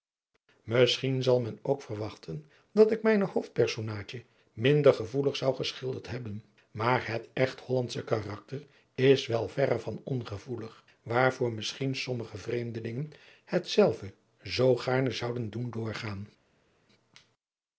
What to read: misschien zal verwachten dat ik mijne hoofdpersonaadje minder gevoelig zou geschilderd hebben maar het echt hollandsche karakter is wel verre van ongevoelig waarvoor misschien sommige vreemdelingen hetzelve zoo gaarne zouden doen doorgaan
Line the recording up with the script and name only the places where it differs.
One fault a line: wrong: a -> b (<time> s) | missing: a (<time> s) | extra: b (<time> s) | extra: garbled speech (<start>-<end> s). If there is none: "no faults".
extra: men ook (1.4 s)